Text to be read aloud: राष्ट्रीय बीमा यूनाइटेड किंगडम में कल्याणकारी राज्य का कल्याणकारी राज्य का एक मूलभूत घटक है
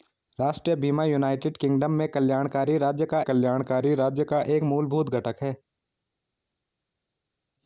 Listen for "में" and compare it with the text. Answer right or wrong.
right